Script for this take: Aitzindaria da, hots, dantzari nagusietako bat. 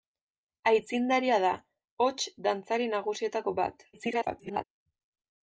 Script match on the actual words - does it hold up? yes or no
no